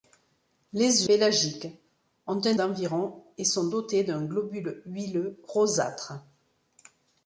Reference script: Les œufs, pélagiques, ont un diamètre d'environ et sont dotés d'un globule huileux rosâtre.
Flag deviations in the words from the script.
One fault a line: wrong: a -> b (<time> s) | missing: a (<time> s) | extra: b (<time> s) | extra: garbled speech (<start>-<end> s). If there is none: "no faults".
missing: œufs (1.1 s)
missing: diamètre (2.5 s)